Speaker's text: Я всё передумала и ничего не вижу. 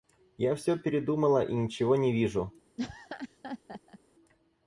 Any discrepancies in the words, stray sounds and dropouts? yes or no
yes